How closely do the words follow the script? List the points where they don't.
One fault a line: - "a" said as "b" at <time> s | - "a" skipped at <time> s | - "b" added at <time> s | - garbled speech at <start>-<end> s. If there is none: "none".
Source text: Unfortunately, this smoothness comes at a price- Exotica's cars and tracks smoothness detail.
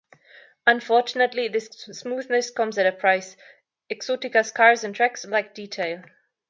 - "smoothness" said as "lack" at 5.3 s